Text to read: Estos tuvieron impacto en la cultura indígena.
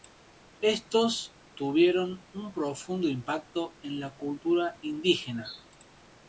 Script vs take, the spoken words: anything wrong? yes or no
yes